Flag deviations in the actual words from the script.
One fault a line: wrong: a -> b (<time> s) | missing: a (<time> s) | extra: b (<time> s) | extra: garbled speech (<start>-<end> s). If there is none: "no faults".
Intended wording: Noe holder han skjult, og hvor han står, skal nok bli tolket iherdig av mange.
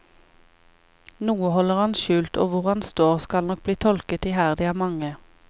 no faults